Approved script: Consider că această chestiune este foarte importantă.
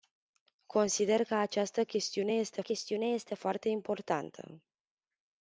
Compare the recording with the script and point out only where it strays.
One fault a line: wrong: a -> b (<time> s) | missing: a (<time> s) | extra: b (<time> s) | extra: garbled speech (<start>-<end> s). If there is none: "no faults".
extra: chestiune este (2.6 s)